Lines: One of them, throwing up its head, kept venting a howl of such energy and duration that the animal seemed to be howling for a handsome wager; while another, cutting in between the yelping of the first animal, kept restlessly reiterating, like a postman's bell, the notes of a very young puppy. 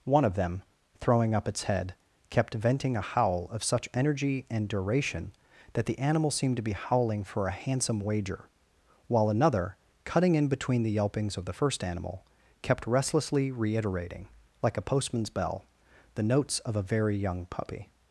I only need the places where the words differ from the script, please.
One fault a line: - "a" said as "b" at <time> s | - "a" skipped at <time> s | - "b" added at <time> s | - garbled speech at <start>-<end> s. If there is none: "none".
- "yelping" said as "yelpings" at 11.0 s